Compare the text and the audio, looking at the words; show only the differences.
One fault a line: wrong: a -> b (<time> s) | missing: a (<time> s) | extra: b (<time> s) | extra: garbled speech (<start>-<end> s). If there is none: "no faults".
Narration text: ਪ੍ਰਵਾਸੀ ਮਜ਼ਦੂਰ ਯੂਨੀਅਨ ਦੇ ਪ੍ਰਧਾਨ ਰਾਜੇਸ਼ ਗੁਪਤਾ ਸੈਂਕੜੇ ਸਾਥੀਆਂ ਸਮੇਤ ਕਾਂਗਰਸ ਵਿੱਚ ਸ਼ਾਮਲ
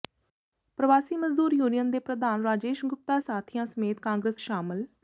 missing: ਸੈਂਕੜੇ (3.2 s)
missing: ਵਿੱਚ (4.4 s)